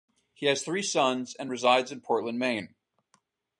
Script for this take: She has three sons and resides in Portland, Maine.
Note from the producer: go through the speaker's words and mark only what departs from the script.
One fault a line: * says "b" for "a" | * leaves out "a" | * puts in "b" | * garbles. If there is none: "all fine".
* says "He" for "She"